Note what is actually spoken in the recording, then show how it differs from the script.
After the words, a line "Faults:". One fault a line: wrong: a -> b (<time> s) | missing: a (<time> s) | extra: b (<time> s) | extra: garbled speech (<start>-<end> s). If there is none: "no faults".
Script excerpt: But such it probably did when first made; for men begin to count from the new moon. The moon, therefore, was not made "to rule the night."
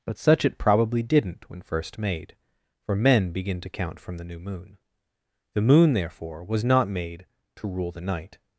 But such it probably didn't when first made; for men begin to count from the new moon. The moon, therefore, was not made "to rule the night."
Faults:
wrong: did -> didn't (1.0 s)